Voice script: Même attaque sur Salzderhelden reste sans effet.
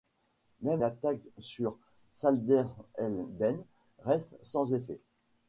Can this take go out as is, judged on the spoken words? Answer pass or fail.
pass